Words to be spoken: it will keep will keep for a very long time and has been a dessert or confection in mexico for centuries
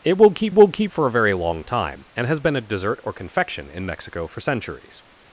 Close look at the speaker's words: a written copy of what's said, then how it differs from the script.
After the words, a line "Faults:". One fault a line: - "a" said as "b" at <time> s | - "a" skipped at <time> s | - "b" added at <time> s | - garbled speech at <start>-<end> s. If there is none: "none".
it will keep will keep for a very long time and has been a dessert or confection in mexico for centuries
Faults:
none